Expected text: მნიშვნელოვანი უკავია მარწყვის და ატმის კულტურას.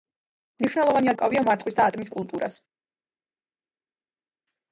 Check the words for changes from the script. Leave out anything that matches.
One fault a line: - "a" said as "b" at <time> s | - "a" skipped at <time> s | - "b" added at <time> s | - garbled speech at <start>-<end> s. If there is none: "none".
none